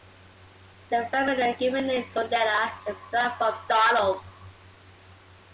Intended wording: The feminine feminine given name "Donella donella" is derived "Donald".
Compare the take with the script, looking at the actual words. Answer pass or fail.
fail